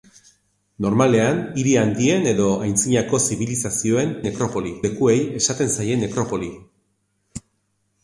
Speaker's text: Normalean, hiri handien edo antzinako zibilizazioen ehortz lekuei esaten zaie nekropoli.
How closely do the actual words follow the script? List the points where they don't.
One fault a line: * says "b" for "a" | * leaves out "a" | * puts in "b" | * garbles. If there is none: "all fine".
* says "nekropoli" for "ehortz"